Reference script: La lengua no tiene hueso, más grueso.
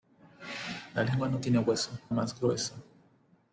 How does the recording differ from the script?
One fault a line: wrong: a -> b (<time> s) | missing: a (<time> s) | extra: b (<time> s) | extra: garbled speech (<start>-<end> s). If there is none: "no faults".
no faults